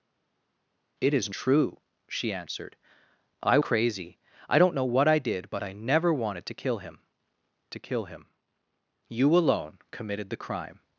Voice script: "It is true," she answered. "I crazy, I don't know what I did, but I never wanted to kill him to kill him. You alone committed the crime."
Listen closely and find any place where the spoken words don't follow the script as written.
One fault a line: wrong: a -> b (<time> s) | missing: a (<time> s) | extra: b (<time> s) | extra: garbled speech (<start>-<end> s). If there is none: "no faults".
no faults